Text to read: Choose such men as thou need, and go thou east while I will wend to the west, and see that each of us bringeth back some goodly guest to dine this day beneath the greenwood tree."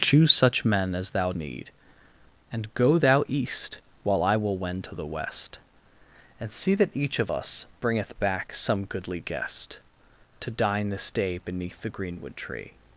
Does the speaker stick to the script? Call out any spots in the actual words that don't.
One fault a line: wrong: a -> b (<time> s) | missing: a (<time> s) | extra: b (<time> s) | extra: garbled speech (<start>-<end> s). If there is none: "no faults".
no faults